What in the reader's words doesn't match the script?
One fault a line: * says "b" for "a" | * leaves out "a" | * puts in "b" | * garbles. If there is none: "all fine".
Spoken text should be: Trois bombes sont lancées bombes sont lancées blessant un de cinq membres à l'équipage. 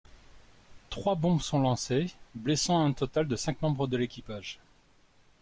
* leaves out "bombes sont lancées"
* puts in "total"
* says "de" for "à"